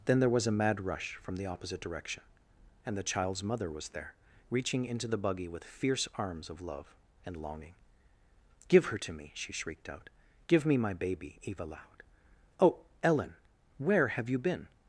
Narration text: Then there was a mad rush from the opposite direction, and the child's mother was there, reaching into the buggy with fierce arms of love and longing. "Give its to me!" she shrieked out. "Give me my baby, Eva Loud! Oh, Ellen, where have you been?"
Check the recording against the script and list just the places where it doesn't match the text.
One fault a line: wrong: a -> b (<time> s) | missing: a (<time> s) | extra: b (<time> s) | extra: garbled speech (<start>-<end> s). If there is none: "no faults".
wrong: its -> her (8.8 s)